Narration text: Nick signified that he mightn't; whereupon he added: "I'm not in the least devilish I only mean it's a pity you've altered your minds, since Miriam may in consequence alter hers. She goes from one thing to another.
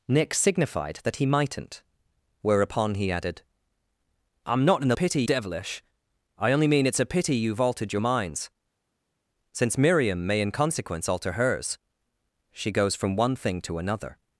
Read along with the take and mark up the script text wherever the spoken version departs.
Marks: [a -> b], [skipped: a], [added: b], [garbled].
Nick signified that he mightn't; whereupon he added: "I'm not in the [least -> pity] devilish I only mean it's a pity you've altered your minds, since Miriam may in consequence alter hers. She goes from one thing to another.